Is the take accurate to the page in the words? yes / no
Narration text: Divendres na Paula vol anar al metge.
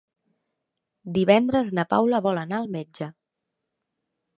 yes